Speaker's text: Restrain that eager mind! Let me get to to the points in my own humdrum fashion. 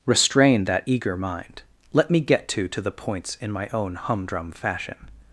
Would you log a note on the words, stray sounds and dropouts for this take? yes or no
no